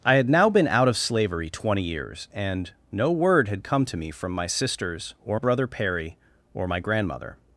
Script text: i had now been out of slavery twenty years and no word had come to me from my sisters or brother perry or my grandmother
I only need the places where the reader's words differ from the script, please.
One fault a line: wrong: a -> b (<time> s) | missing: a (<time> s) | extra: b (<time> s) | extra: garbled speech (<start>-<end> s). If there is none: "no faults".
no faults